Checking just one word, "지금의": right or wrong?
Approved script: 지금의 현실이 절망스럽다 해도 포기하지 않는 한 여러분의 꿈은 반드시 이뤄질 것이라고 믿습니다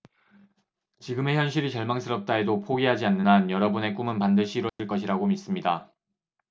right